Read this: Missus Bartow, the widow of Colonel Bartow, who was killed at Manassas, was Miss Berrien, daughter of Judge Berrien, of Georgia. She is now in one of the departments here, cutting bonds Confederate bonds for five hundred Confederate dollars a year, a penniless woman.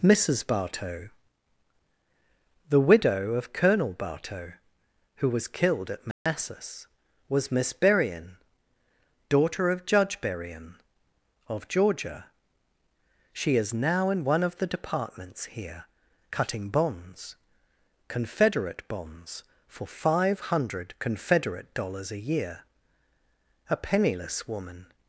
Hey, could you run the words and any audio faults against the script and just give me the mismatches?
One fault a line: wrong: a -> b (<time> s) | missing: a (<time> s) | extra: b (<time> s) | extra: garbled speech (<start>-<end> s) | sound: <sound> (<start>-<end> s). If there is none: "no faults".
sound: dropout (6.1-6.3 s)